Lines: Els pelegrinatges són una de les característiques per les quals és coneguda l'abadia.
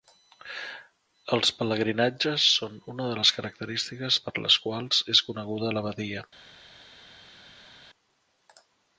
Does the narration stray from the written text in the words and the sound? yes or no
no